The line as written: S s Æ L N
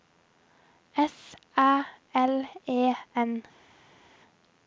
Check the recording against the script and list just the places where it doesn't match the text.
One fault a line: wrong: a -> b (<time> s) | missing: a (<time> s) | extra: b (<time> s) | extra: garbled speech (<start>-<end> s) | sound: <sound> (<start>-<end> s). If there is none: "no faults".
missing: s (1.4 s)
extra: E (2.7 s)